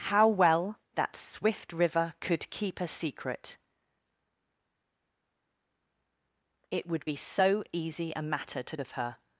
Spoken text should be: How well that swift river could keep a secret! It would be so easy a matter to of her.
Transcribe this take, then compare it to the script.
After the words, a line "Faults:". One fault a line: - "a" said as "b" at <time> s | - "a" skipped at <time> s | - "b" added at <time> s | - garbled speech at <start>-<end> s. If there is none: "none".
How well that swift river could keep a secret! It would be so easy a matter to of her.
Faults:
none